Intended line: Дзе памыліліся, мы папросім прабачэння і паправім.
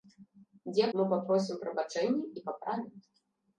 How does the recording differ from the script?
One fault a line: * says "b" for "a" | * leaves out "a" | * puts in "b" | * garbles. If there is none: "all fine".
* leaves out "памыліліся"